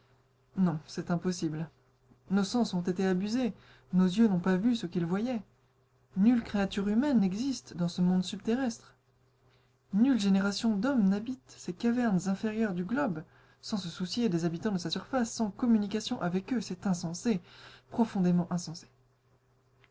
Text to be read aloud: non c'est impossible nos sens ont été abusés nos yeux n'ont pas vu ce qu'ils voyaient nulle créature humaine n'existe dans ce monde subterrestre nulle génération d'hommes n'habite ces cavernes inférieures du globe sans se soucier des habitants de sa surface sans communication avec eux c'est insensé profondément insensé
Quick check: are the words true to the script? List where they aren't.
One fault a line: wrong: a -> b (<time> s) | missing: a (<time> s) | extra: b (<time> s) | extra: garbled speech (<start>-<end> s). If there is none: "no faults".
no faults